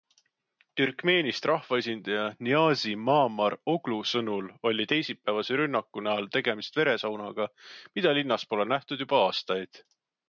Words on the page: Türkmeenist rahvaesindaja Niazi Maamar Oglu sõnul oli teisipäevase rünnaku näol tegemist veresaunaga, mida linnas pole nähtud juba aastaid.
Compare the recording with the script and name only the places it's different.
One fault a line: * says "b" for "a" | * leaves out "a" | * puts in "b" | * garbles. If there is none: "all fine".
all fine